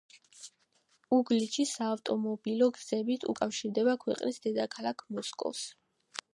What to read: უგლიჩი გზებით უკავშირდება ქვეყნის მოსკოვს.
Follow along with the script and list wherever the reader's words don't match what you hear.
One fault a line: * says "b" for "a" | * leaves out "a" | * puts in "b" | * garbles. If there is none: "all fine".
* puts in "საავტომობილო"
* puts in "დედაქალაქ"